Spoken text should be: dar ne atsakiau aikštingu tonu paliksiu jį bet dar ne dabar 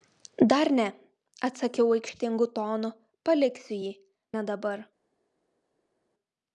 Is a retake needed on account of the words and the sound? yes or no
yes